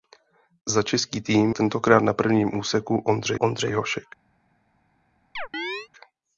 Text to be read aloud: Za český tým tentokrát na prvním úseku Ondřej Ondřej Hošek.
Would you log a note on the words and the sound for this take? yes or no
yes